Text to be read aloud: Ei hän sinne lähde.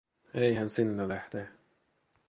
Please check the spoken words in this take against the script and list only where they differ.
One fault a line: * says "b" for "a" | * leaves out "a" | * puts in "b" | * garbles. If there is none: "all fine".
all fine